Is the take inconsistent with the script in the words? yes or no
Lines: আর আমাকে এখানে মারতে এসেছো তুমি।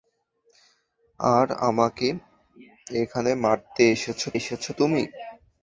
yes